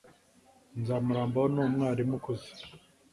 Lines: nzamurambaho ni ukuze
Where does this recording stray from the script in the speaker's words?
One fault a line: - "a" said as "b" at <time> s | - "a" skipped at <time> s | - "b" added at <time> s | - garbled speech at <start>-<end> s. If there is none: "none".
- "umwarimu" added at 1.6 s